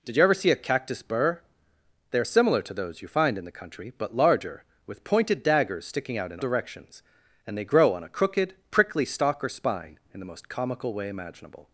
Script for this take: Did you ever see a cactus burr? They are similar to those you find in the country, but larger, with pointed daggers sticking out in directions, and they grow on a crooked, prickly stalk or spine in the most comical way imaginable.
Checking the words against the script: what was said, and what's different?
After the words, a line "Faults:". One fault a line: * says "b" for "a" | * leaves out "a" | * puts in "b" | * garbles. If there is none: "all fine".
Did you ever see a cactus burr? They are similar to those you find in the country, but larger, with pointed daggers sticking out in directions, and they grow on a crooked, prickly stalk or spine in the most comical way imaginable.
Faults:
all fine